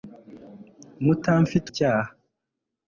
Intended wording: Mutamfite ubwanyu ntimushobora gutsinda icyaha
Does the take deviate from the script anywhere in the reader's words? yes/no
yes